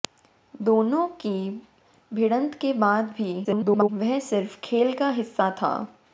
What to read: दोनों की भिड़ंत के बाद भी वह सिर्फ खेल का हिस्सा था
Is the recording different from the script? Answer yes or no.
yes